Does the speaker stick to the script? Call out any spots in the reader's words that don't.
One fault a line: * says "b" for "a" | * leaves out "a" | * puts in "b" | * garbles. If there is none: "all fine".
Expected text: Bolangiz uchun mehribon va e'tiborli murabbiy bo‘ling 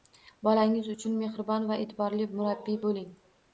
all fine